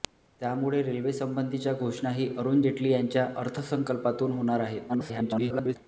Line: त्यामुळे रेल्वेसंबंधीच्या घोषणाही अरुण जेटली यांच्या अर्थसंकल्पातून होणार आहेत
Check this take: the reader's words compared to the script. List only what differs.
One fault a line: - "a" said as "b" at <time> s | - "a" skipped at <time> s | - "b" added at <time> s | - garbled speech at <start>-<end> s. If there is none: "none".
- garbled speech at 4.9-5.8 s